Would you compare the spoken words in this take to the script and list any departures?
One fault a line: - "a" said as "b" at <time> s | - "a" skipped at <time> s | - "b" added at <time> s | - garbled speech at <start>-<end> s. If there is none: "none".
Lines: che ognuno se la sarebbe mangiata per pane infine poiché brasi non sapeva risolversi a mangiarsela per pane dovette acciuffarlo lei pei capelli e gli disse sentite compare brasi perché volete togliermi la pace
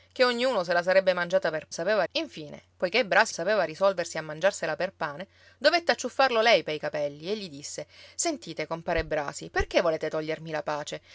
- "pane" said as "sapeva" at 1.7 s
- "non" skipped at 3.3 s